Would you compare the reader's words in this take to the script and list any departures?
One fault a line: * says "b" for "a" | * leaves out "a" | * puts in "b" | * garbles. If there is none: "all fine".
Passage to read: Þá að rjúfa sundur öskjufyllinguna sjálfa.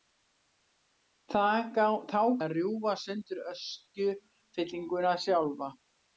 all fine